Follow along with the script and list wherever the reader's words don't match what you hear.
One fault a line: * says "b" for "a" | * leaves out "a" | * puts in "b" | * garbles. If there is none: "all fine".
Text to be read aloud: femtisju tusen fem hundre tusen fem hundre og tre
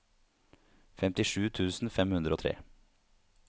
* leaves out "tusen fem hundre"